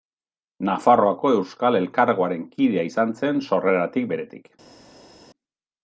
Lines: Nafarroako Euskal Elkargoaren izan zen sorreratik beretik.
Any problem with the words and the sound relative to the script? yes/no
yes